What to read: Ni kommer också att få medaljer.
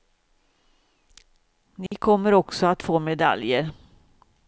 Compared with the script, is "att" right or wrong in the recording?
right